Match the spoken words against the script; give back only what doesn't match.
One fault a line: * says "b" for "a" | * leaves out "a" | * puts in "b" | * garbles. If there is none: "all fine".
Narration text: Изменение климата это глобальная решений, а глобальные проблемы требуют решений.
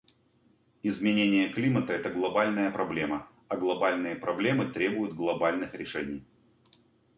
* says "проблема" for "решений"
* puts in "глобальных"